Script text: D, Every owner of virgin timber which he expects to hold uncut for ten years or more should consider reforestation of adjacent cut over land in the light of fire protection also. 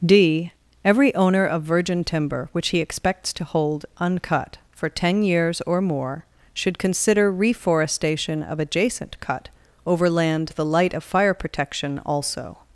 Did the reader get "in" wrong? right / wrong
wrong